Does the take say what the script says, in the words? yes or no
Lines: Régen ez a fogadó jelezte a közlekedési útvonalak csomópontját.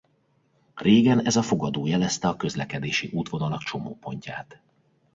yes